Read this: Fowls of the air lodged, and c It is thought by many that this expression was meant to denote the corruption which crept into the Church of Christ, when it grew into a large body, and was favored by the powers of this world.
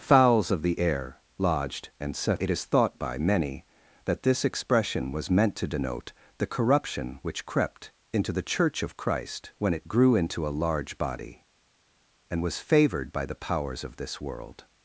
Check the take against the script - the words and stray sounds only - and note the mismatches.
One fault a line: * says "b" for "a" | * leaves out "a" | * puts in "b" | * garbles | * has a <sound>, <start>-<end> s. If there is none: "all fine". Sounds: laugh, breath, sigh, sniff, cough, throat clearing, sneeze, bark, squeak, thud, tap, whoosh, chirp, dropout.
* says "set" for "c"